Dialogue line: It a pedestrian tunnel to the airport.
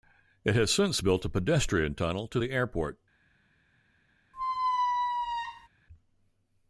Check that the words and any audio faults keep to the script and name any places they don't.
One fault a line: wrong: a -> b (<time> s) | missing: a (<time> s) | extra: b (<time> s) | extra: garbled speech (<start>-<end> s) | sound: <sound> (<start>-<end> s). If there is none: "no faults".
extra: has since built (0.6 s)
sound: squeak (4.3-5.7 s)